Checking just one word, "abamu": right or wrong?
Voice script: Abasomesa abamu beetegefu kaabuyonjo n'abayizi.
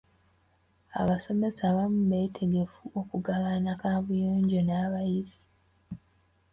right